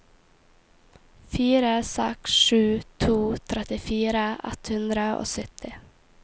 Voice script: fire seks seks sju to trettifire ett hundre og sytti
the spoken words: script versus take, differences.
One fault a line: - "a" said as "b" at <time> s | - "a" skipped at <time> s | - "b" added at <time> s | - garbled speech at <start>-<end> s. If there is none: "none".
- "seks" skipped at 2.3 s